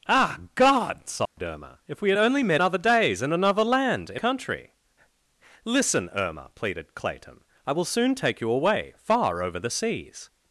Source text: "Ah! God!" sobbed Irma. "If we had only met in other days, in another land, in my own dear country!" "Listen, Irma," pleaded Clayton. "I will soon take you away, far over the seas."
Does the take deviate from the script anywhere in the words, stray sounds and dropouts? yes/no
yes